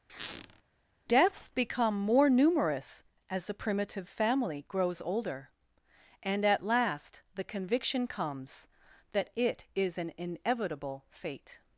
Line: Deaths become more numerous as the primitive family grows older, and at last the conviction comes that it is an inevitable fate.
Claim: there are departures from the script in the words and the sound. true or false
true